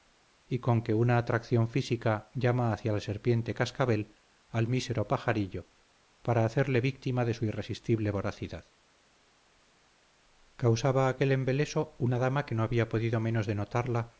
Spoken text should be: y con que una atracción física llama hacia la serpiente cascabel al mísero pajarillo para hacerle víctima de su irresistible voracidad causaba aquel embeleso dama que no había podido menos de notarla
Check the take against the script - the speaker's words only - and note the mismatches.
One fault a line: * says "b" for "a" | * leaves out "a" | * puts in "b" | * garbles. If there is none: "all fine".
* puts in "una"